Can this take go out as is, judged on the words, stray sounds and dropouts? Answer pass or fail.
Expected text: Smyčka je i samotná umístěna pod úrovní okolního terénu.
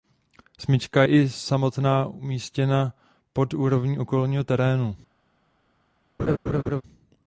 fail